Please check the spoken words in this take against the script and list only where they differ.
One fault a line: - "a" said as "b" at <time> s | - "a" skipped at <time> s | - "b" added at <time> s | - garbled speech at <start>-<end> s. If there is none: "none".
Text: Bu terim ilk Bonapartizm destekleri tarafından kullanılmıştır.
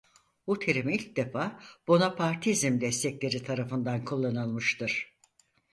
- "defa" added at 1.2 s